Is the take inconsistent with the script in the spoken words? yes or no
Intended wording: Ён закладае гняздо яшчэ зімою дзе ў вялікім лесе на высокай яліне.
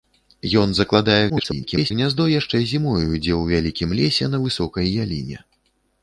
yes